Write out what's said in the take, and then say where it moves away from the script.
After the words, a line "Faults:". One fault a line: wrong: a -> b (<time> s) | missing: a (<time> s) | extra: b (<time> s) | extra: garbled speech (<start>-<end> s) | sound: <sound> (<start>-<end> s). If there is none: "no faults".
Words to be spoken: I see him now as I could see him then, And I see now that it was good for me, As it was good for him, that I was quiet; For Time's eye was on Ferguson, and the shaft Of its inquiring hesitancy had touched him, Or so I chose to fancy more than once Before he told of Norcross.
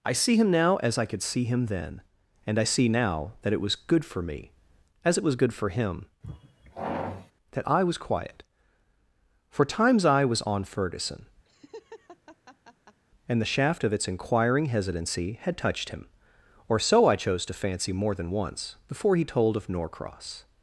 I see him now as I could see him then, And I see now that it was good for me, As it was good for him, that I was quiet; For Time's eye was on Ferguson, and the shaft Of its inquiring hesitancy had touched him, Or so I chose to fancy more than once Before he told of Norcross.
Faults:
sound: sigh (6.2-7.3 s)
sound: laugh (11.4-13.0 s)